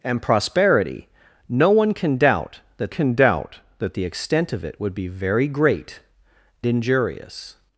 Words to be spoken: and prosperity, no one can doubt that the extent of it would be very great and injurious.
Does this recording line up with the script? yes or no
no